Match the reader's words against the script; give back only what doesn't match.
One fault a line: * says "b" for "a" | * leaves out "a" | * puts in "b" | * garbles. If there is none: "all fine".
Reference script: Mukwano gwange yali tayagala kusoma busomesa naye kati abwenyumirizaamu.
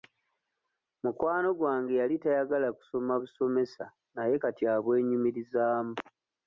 all fine